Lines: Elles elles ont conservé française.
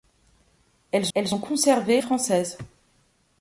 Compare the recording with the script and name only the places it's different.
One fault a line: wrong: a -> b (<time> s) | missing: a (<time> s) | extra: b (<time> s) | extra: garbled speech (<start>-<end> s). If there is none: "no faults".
no faults